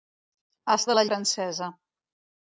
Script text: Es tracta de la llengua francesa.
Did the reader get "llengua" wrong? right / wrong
wrong